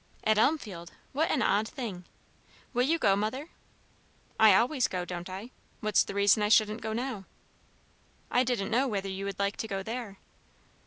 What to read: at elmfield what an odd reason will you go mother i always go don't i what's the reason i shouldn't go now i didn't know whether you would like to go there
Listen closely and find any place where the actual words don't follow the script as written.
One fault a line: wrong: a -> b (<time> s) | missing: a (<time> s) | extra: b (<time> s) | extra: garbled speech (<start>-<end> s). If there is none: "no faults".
wrong: reason -> thing (1.7 s)